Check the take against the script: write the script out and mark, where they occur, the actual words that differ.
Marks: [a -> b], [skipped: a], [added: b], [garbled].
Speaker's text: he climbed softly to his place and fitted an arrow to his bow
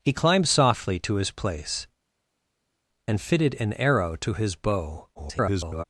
he climbed softly to his place and fitted an arrow to his bow [garbled]